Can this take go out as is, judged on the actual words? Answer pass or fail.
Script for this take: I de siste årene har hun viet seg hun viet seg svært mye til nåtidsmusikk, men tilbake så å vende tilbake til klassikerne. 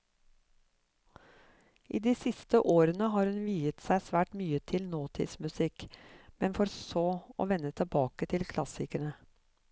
fail